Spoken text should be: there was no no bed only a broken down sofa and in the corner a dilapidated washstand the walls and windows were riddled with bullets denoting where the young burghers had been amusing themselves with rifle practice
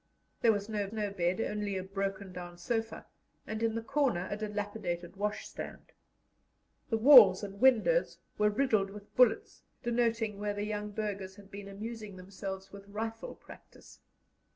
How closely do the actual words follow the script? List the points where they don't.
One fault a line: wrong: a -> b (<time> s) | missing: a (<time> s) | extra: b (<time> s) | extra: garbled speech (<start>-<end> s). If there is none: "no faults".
no faults